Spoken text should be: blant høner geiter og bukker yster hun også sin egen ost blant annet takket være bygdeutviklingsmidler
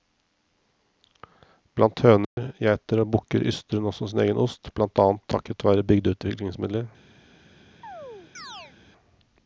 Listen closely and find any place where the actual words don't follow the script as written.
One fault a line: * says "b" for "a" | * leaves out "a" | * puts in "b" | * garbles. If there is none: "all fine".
all fine